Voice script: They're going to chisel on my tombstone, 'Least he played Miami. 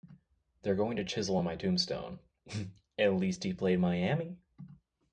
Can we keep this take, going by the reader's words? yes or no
no